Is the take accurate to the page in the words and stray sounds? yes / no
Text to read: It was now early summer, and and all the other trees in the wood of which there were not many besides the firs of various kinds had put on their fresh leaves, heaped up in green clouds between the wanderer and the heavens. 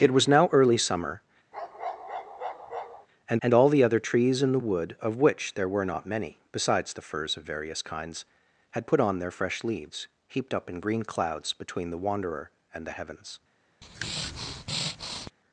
no